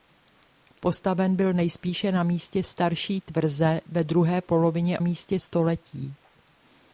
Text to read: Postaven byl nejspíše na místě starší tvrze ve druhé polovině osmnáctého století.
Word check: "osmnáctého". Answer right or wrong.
wrong